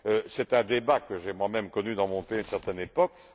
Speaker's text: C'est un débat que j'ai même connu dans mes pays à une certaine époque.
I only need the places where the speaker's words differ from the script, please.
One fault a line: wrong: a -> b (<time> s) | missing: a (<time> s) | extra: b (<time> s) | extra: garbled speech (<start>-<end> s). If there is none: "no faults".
extra: moi (1.3 s)
wrong: mes -> mon (2.1 s)